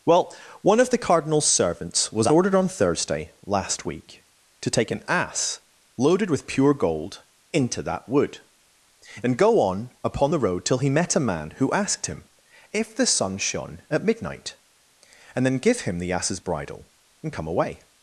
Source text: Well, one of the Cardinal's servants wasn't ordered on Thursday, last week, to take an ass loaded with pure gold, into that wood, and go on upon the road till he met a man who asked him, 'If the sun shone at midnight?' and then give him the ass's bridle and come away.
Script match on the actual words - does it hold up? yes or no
no